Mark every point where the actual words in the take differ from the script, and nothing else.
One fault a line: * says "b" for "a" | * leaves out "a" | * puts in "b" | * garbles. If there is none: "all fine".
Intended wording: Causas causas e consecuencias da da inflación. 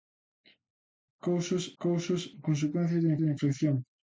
all fine